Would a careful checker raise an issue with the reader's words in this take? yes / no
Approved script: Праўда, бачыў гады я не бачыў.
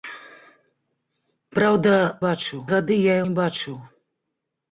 no